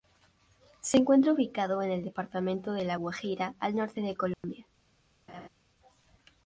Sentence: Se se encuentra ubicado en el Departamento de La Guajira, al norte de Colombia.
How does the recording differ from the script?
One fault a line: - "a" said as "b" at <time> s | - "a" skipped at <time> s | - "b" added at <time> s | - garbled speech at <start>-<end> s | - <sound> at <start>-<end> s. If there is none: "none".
- "se" skipped at 1.0 s
- dropout at 4.3-4.4 s
- laugh at 5.3-5.5 s